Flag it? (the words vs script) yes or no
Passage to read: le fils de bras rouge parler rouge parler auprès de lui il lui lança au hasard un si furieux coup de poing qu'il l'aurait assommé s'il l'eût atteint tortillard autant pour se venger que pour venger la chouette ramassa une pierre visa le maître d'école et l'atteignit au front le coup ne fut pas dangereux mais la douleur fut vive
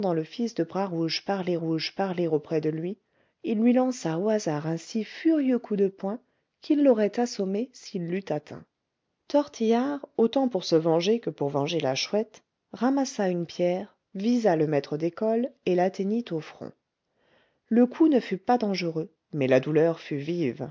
no